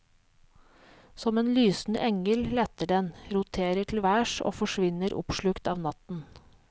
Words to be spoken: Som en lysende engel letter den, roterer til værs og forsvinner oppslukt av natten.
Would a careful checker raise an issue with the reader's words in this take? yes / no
no